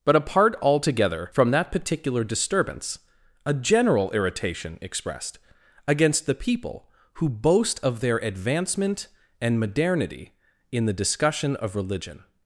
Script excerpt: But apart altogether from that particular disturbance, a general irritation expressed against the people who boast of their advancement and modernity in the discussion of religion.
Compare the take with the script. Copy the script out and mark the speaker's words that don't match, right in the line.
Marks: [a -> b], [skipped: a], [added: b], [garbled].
But apart altogether from that particular disturbance, a general irritation expressed against the people who boast of their advancement and modernity in the discussion of religion.